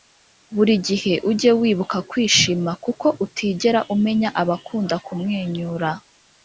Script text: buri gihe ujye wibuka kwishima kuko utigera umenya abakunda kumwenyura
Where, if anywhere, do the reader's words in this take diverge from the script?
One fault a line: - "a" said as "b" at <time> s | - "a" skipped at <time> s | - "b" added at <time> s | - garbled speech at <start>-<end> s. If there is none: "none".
none